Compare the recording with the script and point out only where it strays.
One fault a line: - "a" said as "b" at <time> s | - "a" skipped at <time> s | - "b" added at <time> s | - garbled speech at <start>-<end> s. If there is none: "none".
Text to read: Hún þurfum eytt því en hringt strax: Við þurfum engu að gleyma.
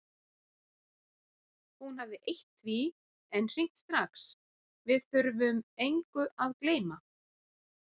- "þurfum" said as "hafði" at 2.0 s